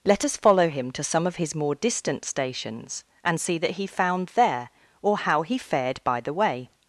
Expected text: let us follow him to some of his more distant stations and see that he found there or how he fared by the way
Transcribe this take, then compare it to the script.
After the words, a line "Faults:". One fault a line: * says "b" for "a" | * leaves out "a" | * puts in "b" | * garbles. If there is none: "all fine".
let us follow him to some of his more distant stations and see that he found there or how he fared by the way
Faults:
all fine